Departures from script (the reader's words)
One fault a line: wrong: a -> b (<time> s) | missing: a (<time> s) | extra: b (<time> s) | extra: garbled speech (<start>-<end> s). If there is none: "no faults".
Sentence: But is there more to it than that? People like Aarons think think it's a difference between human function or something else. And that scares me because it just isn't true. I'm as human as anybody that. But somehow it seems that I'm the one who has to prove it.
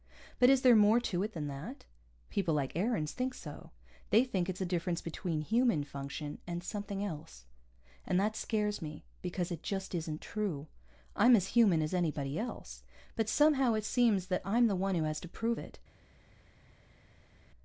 extra: so They (3.4 s)
wrong: or -> and (6.5 s)
wrong: that -> else (12.4 s)